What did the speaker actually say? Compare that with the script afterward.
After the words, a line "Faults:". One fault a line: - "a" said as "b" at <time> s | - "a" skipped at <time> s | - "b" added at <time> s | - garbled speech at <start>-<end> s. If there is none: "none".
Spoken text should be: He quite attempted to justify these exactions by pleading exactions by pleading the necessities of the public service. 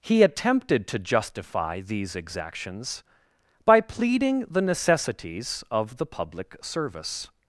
He attempted to justify these exactions by pleading the necessities of the public service.
Faults:
- "quite" skipped at 0.2 s
- "exactions by pleading" skipped at 4.5 s